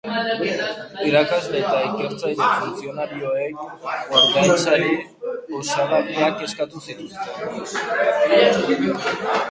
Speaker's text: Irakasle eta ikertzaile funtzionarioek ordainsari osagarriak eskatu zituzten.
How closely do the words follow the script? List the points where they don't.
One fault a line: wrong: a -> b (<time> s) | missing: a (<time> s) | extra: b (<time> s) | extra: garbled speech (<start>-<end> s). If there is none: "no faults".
no faults